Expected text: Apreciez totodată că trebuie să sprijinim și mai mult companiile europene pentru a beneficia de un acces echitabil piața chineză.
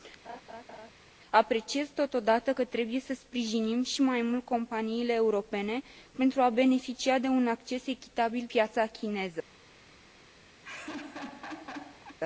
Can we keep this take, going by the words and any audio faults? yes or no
no